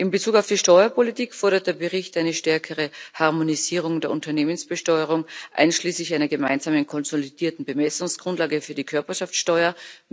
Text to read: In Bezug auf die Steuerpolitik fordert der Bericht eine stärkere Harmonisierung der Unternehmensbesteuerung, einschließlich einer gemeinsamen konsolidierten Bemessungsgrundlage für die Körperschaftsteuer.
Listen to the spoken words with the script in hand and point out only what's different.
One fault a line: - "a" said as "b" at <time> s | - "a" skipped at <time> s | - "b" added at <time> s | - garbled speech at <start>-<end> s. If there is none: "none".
none